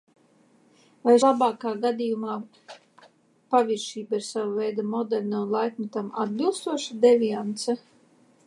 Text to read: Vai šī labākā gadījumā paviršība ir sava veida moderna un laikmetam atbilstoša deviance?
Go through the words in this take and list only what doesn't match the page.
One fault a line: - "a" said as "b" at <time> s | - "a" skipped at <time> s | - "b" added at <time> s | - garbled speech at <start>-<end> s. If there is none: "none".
- "šī" skipped at 1.1 s